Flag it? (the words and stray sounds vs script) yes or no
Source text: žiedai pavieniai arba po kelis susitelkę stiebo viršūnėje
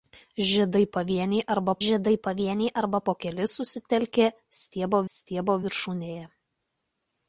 yes